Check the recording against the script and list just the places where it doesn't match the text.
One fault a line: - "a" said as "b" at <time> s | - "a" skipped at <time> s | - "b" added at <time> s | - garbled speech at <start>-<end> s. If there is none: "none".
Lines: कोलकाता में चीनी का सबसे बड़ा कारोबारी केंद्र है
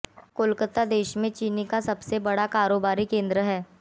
- "देश" added at 0.8 s